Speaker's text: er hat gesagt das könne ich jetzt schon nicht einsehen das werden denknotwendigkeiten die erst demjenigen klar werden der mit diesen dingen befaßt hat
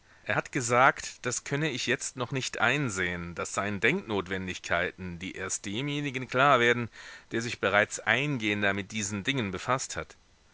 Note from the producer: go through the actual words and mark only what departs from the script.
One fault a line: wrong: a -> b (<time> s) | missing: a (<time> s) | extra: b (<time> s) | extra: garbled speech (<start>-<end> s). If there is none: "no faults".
wrong: schon -> noch (2.1 s)
wrong: werden -> seien (3.5 s)
extra: sich bereits eingehender (7.4 s)